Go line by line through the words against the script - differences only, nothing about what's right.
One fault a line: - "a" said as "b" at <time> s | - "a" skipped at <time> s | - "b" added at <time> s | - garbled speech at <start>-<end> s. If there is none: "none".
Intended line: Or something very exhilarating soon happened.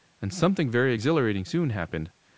- "Or" said as "And" at 0.2 s